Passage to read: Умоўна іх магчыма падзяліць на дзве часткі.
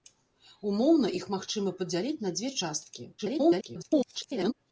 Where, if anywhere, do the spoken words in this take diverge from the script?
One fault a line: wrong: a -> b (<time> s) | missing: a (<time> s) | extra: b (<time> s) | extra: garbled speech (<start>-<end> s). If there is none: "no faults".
extra: garbled speech (3.2-4.5 s)